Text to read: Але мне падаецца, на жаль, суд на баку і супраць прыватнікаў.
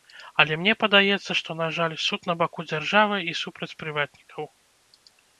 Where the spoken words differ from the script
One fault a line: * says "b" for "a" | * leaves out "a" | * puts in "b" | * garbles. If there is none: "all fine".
* puts in "што"
* puts in "дзяржавы"